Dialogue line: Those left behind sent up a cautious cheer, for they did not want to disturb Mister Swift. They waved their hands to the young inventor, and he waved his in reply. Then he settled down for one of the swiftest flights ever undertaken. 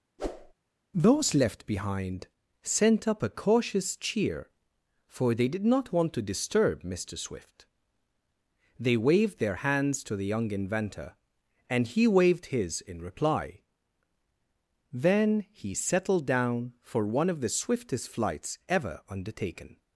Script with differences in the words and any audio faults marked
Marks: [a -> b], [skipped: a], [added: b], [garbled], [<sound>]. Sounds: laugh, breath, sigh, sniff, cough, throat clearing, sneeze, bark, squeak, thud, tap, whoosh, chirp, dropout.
[whoosh] Those left behind sent up a cautious cheer, for they did not want to disturb Mister Swift. They waved their hands to the young inventor, and he waved his in reply. Then he settled down for one of the swiftest flights ever undertaken.